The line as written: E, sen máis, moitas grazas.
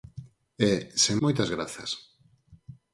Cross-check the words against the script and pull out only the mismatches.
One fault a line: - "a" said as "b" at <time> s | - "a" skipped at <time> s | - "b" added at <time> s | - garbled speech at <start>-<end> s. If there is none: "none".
- "máis" skipped at 1.2 s